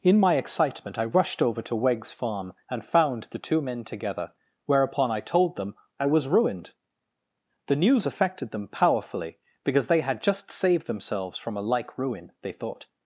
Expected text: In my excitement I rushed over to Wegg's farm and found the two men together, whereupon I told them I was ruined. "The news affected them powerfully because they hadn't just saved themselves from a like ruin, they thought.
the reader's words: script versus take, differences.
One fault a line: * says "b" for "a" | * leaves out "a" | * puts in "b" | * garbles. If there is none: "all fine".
* says "had" for "hadn't"